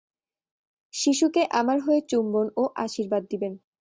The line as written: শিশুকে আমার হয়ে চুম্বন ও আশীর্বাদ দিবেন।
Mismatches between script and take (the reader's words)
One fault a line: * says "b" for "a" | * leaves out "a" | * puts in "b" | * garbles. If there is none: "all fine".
all fine